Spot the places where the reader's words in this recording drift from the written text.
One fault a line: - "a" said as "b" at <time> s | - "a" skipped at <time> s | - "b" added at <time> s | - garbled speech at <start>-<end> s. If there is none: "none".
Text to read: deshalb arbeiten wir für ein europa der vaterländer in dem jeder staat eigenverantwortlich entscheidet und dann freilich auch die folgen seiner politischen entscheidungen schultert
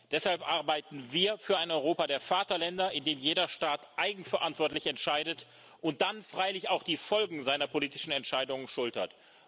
none